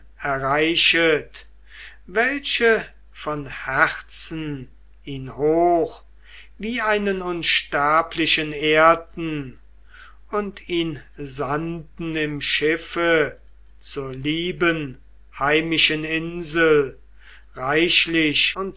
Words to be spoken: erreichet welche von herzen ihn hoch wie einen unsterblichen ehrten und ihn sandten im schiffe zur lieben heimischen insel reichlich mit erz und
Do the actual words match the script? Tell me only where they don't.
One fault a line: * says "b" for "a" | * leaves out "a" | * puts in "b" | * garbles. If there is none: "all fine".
* leaves out "mit erz"